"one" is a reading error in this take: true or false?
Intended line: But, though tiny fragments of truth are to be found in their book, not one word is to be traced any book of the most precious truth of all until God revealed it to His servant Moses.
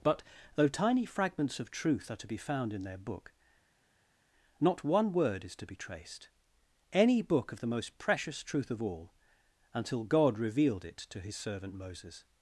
false